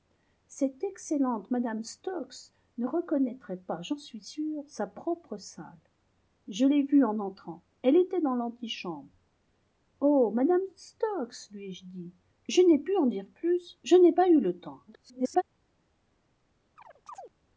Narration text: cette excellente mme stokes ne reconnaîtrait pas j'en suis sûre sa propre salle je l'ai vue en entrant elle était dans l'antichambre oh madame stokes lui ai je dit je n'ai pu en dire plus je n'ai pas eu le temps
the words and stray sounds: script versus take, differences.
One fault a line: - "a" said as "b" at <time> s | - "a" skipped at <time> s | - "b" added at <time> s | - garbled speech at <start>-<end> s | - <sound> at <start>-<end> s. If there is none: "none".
- garbled speech at 14.9-15.4 s
- chirp at 16.8-17.3 s